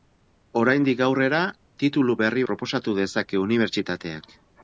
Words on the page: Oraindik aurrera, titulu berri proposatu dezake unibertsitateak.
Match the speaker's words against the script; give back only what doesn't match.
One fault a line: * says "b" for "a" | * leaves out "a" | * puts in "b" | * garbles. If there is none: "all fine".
all fine